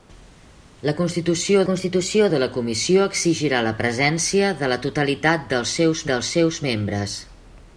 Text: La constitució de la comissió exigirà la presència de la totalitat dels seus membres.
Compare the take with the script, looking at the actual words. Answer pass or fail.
fail